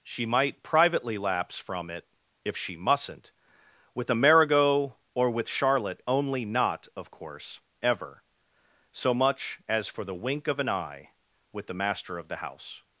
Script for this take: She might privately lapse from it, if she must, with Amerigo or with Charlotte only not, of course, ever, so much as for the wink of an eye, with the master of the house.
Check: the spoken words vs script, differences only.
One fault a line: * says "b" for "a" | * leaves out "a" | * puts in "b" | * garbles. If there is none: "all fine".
* says "mustn't" for "must"